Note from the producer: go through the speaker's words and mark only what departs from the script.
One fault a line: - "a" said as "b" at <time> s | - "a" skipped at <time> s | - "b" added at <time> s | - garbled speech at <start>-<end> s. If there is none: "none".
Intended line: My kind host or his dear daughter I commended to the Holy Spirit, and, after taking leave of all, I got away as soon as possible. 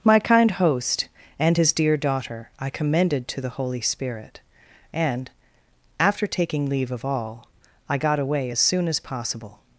- "or" said as "and" at 1.4 s